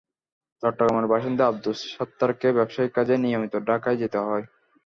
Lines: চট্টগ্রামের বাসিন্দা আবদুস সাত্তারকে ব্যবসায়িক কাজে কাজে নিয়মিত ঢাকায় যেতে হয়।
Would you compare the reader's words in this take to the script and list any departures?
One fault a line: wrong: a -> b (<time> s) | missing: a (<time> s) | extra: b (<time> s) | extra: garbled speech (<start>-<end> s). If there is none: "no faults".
missing: কাজে (3.1 s)